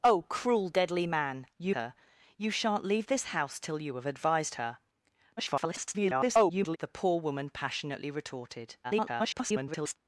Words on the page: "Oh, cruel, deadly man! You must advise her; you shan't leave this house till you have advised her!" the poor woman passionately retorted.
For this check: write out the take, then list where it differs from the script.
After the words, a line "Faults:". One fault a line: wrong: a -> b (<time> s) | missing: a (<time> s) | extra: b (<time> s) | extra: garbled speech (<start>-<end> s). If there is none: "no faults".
"Oh, cruel, deadly man! You her; you shan't leave this house till you have advised her!" [garbled] the poor woman passionately retorted. [garbled]
Faults:
missing: must advise (1.8 s)
extra: garbled speech (5.4-6.8 s)
extra: garbled speech (8.8-10.0 s)